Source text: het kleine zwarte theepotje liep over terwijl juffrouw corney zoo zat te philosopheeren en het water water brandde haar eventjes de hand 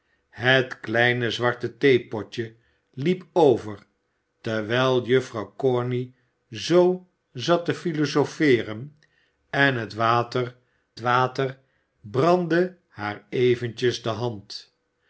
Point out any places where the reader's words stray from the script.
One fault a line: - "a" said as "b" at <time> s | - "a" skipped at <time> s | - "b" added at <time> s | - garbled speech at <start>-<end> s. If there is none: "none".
none